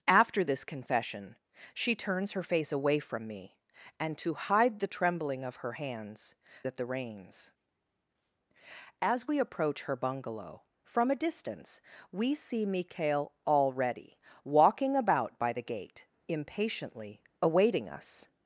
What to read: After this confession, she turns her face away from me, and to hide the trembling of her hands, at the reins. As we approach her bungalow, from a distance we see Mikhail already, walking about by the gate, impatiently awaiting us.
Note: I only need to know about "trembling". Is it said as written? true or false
true